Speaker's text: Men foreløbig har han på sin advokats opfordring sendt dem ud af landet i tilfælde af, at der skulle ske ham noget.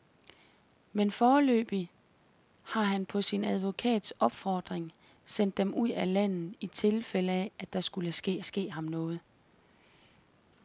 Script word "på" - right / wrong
right